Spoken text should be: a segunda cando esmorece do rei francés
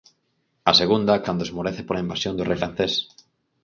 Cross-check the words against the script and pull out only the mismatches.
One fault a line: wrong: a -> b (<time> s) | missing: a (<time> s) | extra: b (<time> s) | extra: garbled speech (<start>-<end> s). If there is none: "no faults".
extra: pola invasión (1.9 s)